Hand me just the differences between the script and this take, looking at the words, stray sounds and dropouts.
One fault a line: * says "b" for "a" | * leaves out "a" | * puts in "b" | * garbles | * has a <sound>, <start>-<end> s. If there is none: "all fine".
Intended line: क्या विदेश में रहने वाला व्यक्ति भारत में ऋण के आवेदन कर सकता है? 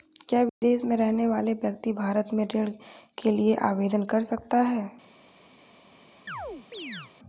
* has a dropout, 0.5-0.6 s
* puts in "लिए"
* has a chirp, 6.3-7.1 s